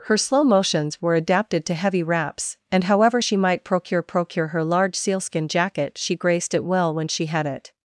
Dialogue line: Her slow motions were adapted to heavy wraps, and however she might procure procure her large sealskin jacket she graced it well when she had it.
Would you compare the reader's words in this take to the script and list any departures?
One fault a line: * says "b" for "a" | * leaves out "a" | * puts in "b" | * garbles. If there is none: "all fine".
all fine